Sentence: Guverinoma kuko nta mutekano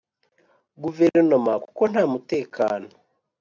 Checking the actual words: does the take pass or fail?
pass